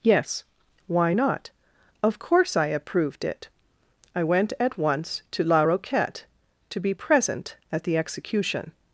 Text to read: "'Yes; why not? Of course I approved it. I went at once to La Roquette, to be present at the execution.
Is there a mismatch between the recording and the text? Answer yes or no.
no